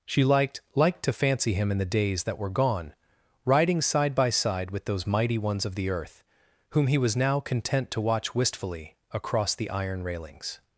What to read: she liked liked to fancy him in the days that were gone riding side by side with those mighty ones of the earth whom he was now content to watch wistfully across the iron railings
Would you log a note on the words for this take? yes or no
no